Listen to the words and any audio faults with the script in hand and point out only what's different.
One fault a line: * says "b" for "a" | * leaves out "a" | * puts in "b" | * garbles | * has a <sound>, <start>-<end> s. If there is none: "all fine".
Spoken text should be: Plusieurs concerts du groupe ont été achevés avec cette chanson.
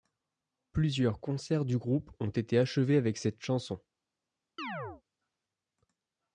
* has a chirp, 4.6-5.0 s